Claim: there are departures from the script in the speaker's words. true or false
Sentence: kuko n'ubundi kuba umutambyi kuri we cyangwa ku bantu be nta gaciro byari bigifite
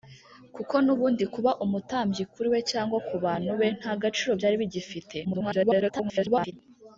true